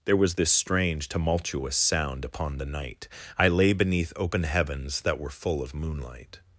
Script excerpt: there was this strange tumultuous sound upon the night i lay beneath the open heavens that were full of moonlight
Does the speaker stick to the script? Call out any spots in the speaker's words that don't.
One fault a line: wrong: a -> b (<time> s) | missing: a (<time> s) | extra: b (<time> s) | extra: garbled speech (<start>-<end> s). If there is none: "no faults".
missing: the (4.1 s)